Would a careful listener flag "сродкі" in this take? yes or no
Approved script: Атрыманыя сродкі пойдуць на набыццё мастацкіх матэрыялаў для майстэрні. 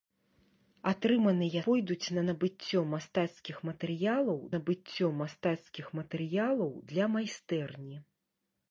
yes